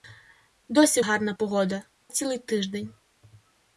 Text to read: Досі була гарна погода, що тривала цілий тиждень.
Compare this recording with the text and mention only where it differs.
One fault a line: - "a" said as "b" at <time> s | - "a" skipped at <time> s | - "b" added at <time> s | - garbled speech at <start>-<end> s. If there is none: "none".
- "була" skipped at 1.0 s
- "що тривала" skipped at 1.8 s